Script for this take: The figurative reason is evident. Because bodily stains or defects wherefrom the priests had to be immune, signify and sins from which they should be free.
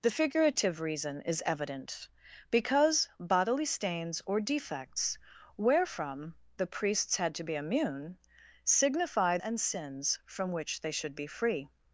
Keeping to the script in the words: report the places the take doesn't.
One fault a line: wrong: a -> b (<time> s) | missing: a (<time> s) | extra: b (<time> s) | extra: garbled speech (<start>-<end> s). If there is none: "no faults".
no faults